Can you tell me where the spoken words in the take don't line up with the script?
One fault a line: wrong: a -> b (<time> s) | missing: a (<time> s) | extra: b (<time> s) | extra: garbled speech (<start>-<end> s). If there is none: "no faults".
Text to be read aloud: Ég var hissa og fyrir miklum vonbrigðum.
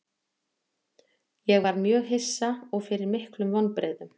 extra: mjög (1.9 s)